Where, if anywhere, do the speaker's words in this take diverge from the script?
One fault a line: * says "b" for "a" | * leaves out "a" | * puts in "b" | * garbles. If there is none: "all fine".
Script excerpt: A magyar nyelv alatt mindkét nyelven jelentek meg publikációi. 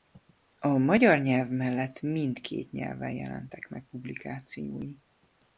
* says "mellett" for "alatt"